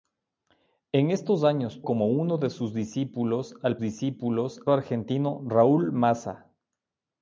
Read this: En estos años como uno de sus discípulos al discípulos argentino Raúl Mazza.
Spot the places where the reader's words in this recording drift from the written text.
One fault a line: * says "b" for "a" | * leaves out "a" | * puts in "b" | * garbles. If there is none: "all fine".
all fine